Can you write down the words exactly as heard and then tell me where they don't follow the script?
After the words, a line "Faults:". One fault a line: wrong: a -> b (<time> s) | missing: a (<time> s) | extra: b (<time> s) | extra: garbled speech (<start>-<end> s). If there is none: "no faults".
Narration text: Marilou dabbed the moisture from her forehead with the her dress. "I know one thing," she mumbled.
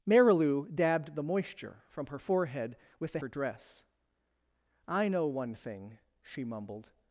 Marilou dabbed the moisture from her forehead with the her dress. "I know one thing," she mumbled.
Faults:
no faults